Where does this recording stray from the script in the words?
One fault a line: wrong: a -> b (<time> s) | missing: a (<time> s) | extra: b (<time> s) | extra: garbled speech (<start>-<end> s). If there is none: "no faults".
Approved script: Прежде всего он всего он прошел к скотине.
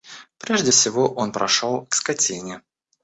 missing: всего он (1.3 s)